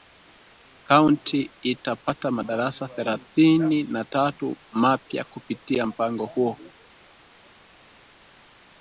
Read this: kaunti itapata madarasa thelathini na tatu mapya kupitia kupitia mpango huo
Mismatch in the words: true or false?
true